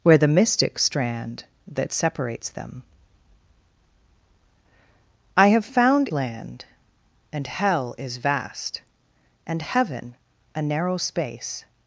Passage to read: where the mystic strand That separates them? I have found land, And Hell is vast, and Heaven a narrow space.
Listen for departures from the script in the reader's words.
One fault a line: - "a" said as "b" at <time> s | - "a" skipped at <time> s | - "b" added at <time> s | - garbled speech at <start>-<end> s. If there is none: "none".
none